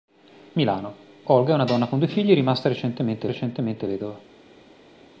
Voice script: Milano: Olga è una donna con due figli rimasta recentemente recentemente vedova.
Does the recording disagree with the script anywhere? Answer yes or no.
no